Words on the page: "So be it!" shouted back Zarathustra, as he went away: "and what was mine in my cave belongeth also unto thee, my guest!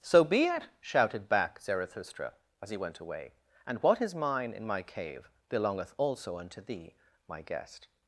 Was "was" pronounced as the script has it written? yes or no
no